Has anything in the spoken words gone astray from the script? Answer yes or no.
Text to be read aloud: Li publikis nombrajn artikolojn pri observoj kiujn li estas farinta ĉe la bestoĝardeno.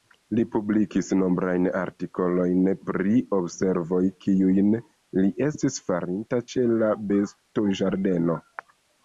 yes